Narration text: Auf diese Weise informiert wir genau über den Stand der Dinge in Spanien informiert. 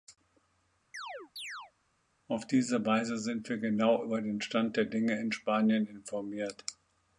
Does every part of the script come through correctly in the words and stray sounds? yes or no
no